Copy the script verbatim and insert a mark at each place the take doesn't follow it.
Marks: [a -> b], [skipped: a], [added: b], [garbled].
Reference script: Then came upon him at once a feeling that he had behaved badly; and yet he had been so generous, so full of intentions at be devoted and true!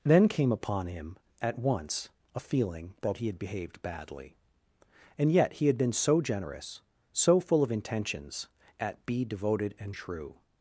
Then came upon him at once a feeling that he had behaved badly; and yet he had been so generous, so full of intentions at be devoted and true!